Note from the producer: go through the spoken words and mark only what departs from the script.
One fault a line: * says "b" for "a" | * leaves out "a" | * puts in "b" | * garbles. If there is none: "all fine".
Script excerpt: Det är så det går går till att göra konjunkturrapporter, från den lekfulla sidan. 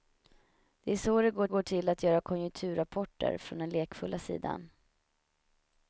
all fine